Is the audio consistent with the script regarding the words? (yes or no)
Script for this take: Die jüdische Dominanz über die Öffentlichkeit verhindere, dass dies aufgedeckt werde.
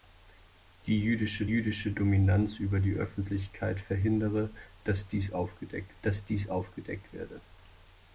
no